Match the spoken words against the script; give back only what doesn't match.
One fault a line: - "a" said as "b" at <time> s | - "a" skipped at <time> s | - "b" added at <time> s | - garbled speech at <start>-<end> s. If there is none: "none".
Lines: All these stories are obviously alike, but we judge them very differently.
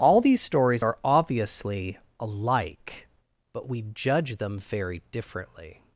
none